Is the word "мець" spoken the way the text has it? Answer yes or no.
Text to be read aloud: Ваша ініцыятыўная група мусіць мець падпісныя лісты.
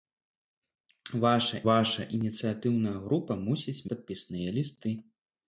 no